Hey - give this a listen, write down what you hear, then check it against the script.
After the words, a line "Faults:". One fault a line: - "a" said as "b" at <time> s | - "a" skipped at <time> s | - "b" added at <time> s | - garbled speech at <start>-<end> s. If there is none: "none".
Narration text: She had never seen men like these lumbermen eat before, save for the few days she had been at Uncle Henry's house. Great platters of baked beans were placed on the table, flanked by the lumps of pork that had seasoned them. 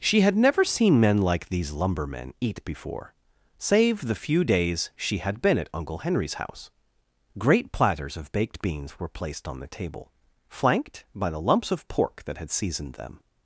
She had never seen men like these lumbermen eat before, save the few days she had been at Uncle Henry's house. Great platters of baked beans were placed on the table, flanked by the lumps of pork that had seasoned them.
Faults:
- "for" skipped at 4.0 s